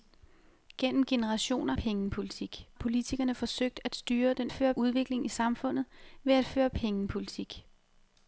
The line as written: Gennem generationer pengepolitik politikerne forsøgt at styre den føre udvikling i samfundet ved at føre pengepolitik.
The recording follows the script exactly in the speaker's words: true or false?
true